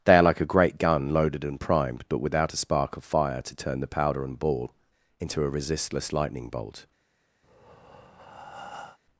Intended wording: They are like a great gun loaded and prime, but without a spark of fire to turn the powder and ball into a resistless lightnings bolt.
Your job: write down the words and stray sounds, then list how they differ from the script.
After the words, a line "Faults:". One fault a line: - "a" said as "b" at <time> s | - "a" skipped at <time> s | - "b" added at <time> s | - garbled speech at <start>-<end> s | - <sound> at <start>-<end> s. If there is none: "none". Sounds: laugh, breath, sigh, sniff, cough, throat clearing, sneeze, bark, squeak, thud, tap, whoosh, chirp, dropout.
They are like a great gun loaded and primed, but without a spark of fire to turn the powder and ball into a resistless lightning bolt.
Faults:
- "prime" said as "primed" at 1.6 s
- "lightnings" said as "lightning" at 6.1 s
- breath at 7.4-9.0 s